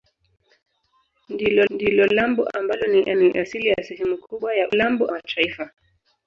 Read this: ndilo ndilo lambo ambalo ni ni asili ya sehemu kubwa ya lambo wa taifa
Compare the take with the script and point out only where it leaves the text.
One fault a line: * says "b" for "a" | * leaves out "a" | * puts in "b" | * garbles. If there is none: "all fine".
all fine